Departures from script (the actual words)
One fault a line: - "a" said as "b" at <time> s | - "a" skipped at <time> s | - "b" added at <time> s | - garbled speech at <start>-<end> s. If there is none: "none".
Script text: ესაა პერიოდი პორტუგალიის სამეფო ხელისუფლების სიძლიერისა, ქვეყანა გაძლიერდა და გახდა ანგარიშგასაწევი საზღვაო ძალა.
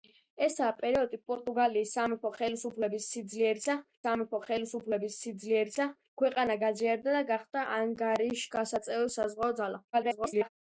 - "სამეფო ხელისუფლების სიძლიერისა" added at 4.1 s
- garbled speech at 9.9-10.5 s